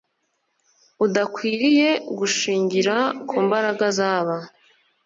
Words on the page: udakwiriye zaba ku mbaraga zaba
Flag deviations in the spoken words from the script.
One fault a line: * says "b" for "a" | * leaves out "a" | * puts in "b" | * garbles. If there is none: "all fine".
* says "gushingira" for "zaba"